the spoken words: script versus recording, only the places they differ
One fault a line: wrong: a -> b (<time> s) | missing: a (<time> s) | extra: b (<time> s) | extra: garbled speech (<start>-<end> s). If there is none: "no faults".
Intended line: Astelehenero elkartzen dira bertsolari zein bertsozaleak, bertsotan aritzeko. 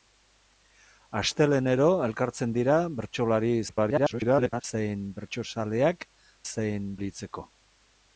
extra: garbled speech (3.7-4.6 s)
wrong: bertsotan -> zein (6.5 s)